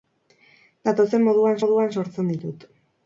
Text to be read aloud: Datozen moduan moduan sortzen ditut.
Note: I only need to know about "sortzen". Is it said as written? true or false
true